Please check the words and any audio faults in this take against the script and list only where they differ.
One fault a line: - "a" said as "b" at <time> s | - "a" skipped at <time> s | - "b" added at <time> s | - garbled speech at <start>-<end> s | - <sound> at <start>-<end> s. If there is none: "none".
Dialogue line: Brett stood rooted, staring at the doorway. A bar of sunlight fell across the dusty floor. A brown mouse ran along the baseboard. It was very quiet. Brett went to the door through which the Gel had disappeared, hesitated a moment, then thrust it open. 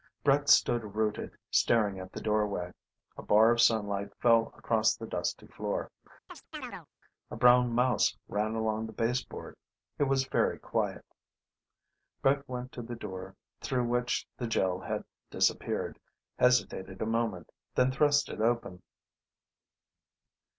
- chirp at 6.3-6.9 s